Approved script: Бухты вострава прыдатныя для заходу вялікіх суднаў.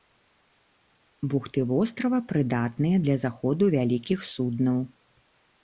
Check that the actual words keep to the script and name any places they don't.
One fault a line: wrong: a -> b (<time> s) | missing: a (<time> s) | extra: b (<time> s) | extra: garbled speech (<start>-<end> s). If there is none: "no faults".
no faults